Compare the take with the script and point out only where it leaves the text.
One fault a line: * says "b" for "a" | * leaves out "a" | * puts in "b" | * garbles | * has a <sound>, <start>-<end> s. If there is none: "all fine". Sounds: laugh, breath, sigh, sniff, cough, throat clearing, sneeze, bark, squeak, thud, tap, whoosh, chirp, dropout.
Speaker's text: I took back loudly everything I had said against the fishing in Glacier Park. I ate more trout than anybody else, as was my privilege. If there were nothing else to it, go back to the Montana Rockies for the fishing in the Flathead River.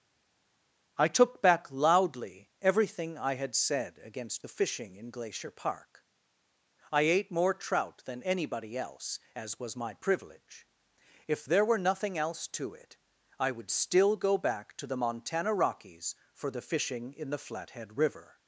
* puts in "I would still"